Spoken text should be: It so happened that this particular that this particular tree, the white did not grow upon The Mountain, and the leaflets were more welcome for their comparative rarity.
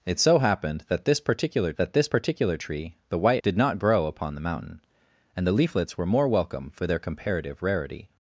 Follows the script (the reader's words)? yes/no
yes